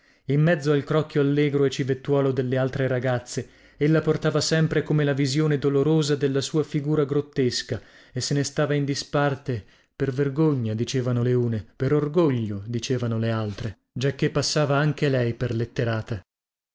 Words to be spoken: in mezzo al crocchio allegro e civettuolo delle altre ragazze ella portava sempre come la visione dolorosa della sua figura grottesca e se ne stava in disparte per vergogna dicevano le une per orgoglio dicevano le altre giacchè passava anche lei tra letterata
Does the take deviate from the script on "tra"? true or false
true